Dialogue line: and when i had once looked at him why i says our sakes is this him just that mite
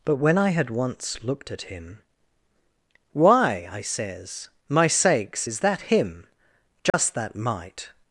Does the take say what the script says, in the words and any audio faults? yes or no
no